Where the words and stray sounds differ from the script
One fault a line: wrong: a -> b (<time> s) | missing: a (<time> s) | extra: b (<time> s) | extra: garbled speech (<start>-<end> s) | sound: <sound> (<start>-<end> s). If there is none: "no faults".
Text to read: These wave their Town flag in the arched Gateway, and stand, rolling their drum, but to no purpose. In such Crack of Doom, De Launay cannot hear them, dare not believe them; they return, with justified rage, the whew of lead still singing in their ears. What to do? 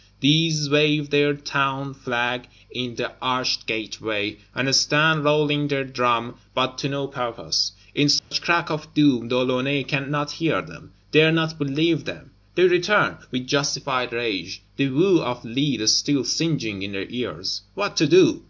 sound: dropout (8.2-8.3 s)